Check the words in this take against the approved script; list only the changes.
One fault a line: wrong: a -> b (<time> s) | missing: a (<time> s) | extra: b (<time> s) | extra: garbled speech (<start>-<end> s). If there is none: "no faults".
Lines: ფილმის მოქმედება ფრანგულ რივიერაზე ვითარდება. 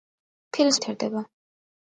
missing: მოქმედება ფრანგულ რივიერაზე (0.8 s)